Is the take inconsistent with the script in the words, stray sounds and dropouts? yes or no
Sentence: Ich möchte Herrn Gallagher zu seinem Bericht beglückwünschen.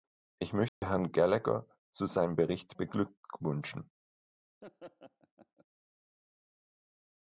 yes